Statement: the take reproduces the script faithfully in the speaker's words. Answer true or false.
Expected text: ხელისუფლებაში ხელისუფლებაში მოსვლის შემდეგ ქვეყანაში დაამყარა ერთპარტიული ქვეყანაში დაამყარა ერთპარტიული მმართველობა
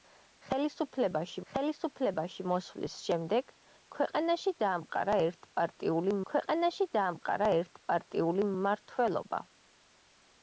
true